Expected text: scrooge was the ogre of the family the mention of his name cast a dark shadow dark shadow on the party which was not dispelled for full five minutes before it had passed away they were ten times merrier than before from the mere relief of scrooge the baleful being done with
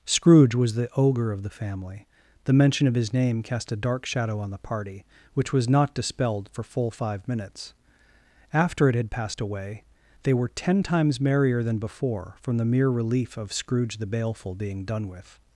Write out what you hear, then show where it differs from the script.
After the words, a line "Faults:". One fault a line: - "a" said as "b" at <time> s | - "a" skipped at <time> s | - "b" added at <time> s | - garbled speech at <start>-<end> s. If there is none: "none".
scrooge was the ogre of the family the mention of his name cast a dark shadow on the party which was not dispelled for full five minutes after it had passed away they were ten times merrier than before from the mere relief of scrooge the baleful being done with
Faults:
- "dark shadow" skipped at 4.4 s
- "before" said as "after" at 8.5 s